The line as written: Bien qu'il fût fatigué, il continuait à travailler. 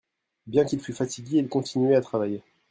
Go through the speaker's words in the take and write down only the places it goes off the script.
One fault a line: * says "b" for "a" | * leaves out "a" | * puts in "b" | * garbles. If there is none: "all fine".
all fine